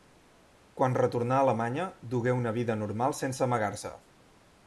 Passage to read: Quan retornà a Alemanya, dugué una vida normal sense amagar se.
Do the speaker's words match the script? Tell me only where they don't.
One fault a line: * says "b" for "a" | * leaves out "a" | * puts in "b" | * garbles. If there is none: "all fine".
all fine